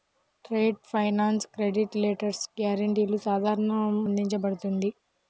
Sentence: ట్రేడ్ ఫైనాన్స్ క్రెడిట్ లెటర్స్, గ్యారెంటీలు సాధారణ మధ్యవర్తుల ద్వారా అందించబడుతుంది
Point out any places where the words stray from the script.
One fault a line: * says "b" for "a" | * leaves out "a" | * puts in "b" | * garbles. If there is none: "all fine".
* leaves out "మధ్యవర్తుల ద్వారా"